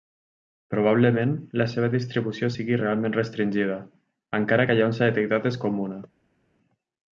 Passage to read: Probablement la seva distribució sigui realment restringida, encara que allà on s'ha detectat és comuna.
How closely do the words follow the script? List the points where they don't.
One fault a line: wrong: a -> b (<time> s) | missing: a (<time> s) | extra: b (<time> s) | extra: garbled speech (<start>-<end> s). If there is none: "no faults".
no faults